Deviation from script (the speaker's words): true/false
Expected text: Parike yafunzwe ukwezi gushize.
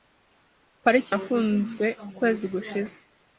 false